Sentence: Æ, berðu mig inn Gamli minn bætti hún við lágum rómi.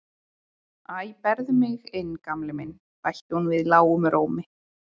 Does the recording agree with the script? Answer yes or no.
yes